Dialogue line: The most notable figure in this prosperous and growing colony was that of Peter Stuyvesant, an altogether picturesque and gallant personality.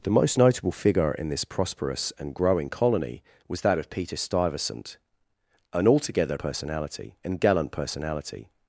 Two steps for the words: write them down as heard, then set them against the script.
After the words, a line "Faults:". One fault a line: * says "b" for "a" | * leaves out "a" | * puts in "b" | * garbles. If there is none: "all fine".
The most notable figure in this prosperous and growing colony was that of Peter Stuyvesant, an altogether personality and gallant personality.
Faults:
* says "personality" for "picturesque"